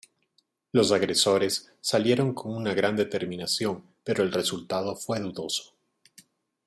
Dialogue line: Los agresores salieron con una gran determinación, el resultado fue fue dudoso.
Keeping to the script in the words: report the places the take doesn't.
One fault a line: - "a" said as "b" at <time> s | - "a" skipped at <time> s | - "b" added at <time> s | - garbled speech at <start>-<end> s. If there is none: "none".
- "pero" added at 4.0 s
- "fue" skipped at 5.2 s